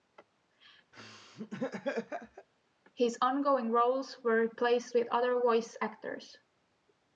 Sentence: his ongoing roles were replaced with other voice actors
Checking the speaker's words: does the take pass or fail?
pass